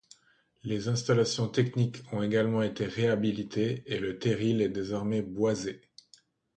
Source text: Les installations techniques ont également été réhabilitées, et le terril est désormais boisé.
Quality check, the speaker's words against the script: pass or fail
pass